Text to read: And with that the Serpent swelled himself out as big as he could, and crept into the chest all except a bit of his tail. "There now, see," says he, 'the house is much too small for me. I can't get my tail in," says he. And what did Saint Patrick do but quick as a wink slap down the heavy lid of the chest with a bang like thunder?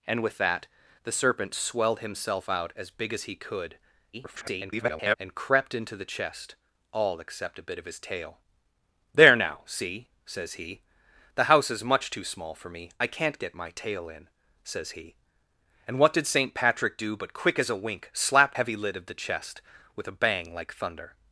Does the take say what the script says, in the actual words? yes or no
no